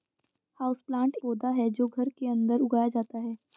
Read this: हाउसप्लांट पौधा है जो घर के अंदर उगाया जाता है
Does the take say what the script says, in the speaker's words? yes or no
yes